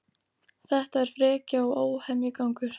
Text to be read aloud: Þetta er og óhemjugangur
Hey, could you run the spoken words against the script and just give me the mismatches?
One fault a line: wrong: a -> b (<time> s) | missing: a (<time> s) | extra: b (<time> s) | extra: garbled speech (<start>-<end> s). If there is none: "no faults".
extra: frekja (1.2 s)